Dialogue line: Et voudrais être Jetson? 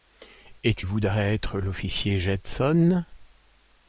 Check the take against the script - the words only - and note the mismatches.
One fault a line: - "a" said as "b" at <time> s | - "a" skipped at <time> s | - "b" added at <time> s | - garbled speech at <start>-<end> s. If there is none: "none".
- "tu" added at 0.7 s
- "l'officier" added at 1.6 s